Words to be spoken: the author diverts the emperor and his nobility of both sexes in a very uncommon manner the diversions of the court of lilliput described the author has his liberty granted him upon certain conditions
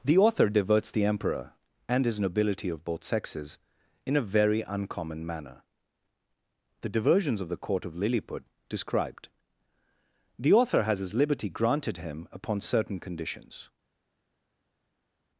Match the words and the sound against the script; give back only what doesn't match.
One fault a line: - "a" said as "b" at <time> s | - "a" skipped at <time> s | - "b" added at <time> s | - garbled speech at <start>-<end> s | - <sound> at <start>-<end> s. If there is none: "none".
none